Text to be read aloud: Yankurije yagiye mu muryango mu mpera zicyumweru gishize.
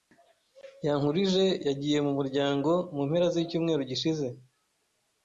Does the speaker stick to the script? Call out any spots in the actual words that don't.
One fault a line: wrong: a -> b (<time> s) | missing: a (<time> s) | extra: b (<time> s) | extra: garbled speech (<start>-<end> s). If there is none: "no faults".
no faults